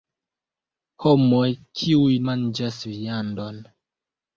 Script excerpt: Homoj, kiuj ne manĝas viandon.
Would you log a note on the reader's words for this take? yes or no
yes